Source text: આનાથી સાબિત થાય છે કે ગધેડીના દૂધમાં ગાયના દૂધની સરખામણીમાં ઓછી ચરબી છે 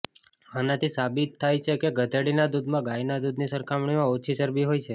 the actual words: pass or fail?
fail